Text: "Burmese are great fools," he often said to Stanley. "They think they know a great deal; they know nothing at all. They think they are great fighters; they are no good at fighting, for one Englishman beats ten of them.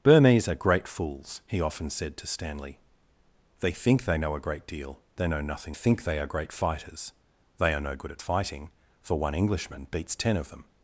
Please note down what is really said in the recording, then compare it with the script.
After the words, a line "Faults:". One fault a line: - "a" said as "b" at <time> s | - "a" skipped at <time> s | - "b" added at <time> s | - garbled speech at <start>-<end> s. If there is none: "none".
"Burmese are great fools," he often said to Stanley. "They think they know a great deal; they know nothing think they are great fighters; they are no good at fighting, for one Englishman beats ten of them.
Faults:
- "at all They" skipped at 5.8 s